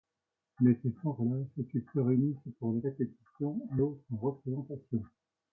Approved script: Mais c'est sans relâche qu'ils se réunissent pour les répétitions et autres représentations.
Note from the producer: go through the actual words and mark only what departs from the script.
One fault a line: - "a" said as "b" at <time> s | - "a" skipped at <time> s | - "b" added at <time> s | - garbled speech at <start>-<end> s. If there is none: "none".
none